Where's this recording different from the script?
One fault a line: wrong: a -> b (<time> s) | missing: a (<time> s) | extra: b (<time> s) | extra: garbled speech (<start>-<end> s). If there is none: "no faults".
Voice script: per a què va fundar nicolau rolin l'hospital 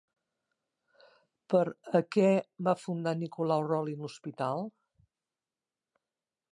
no faults